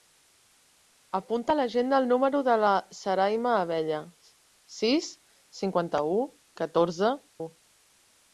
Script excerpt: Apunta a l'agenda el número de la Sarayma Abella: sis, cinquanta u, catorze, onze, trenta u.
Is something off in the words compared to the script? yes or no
yes